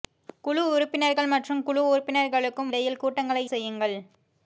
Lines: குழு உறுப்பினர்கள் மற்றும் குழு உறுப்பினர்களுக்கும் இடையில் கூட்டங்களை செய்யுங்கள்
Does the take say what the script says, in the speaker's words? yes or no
yes